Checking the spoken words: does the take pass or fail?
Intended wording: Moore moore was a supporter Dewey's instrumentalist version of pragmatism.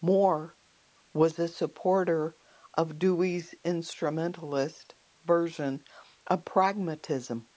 fail